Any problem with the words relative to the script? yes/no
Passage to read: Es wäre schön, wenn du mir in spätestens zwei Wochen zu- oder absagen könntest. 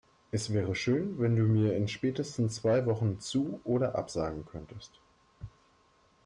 no